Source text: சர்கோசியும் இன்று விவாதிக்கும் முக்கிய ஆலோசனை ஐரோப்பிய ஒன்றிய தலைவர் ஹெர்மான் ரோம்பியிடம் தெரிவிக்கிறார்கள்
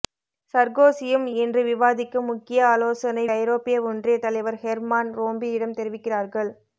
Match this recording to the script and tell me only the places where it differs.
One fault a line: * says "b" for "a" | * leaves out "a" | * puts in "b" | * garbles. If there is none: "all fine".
all fine